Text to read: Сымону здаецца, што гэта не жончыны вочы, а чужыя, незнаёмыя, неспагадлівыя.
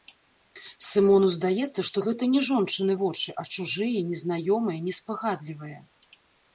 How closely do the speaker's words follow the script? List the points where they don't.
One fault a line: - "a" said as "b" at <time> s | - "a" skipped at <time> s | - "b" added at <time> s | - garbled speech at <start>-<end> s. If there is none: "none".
none